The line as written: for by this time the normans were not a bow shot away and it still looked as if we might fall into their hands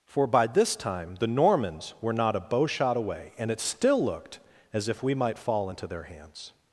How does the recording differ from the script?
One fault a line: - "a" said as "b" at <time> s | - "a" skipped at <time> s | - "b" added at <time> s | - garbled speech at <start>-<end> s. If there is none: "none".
none